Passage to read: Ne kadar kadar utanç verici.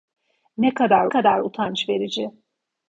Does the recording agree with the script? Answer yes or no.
yes